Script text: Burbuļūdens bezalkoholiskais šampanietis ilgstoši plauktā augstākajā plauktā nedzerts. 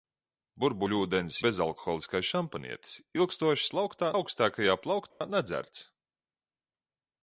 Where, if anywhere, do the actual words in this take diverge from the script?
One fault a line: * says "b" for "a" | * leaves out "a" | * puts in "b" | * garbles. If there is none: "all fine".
all fine